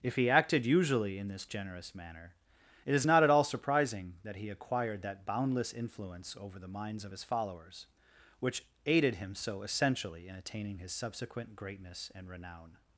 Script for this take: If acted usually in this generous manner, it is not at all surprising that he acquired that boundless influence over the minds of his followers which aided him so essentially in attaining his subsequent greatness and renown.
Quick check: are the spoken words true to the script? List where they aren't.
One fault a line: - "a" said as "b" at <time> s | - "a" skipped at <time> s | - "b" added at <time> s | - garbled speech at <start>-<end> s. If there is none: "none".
- "he" added at 0.1 s